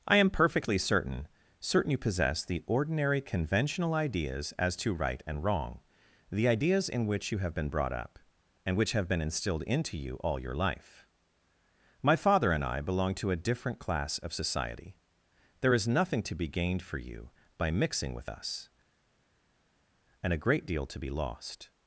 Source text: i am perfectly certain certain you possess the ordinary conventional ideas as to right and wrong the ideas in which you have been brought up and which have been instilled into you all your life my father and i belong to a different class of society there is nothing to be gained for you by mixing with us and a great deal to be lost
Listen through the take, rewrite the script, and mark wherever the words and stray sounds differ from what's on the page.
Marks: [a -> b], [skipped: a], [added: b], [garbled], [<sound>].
i am perfectly certain certain you possess the ordinary conventional ideas as to right and wrong the ideas in which you have been brought up and which have been instilled into you all your life my father and i belong to a different class of society there is nothing to be gained for you by mixing with us and a great deal to be lost